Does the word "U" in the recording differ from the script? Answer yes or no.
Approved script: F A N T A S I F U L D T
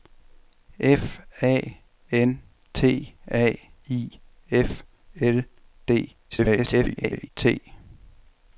yes